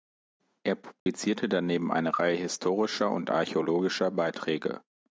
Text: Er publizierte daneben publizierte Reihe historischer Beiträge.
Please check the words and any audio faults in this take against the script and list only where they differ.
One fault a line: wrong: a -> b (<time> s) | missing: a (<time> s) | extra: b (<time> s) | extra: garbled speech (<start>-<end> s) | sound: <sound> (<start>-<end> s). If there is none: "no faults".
sound: dropout (1.0-1.1 s)
wrong: publizierte -> eine (1.9 s)
extra: und archäologischer (3.1 s)